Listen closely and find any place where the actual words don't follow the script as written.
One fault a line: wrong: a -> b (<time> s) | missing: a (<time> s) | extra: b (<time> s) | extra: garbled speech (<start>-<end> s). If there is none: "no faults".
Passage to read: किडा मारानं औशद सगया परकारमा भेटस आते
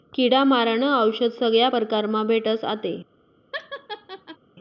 no faults